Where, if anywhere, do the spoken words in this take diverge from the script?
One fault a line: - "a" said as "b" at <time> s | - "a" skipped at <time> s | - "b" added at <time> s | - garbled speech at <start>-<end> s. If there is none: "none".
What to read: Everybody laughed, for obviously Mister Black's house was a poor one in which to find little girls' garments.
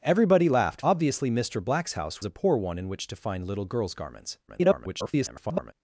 - "for" skipped at 0.8 s
- "was" skipped at 2.2 s
- garbled speech at 4.5-5.7 s